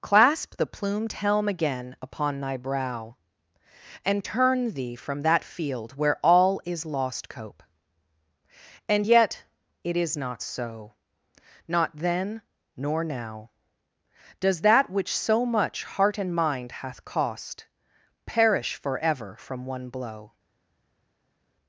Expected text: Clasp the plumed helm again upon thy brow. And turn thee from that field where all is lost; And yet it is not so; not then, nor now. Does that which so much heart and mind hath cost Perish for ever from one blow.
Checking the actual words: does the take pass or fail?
fail